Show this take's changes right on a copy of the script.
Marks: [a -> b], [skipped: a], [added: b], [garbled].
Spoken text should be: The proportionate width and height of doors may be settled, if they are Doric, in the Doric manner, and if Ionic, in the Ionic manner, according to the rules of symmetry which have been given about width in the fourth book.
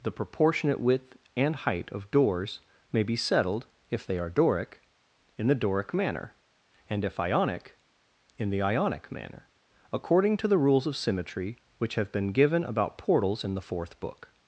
The proportionate width and height of doors may be settled, if they are Doric, in the Doric manner, and if Ionic, in the Ionic manner, according to the rules of symmetry which have been given about [width -> portals] in the fourth book.